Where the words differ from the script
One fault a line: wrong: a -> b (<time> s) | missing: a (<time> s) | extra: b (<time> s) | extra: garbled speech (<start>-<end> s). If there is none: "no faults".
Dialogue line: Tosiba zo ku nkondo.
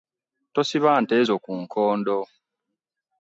extra: nte (1.0 s)